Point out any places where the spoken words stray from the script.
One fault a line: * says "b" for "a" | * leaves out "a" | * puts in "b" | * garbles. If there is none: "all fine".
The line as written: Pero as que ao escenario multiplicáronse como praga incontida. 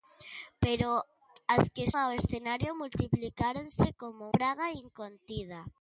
all fine